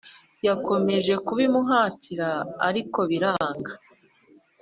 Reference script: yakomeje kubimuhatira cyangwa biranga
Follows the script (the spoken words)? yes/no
no